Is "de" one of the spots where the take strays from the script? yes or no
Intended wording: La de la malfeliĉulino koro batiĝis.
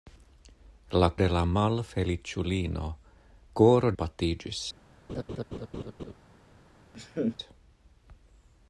no